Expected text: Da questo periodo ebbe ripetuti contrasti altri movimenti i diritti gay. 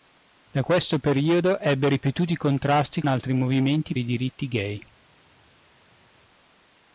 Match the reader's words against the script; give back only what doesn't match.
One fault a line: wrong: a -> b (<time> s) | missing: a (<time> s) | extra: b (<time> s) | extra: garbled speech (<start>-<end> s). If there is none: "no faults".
no faults